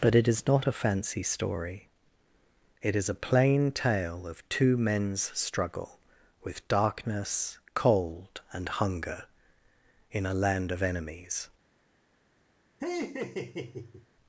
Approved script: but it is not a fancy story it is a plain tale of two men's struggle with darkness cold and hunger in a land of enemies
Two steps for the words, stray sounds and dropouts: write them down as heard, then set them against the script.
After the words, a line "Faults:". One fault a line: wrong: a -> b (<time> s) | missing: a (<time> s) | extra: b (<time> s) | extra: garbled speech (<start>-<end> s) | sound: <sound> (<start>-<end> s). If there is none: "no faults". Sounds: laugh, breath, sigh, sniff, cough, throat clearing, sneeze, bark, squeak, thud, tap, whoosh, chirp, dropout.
but it is not a fancy story it is a plain tale of two men's struggle with darkness cold and hunger in a land of enemies
Faults:
sound: laugh (12.8-14.1 s)